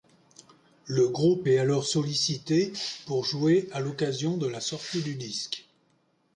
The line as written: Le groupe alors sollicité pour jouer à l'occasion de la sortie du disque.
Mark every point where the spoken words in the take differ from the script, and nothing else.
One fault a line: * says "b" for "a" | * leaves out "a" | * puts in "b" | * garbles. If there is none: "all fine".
* puts in "est"